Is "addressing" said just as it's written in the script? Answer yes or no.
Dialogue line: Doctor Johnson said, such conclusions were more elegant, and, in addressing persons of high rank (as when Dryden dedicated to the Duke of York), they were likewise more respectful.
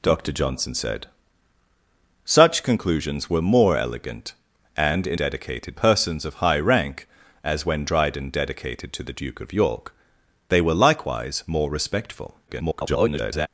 no